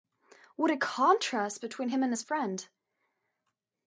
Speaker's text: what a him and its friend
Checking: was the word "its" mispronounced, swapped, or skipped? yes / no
yes